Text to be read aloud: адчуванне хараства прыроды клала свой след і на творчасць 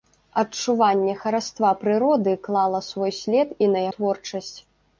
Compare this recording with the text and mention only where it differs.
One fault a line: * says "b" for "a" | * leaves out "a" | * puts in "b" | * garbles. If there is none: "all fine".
all fine